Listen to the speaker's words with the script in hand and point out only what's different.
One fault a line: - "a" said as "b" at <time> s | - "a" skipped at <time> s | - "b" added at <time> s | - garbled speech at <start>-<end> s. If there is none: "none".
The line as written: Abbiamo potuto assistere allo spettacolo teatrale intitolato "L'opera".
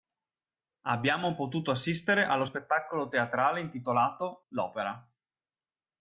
none